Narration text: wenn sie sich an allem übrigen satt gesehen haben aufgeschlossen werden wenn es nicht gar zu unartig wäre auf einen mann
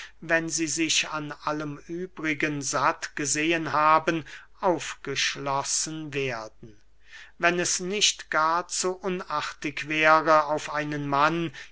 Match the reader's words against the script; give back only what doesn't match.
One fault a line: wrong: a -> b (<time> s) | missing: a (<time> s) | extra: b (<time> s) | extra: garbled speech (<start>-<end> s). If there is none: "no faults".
no faults